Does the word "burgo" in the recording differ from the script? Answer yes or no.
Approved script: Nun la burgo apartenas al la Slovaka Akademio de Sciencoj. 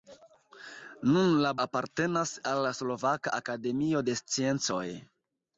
yes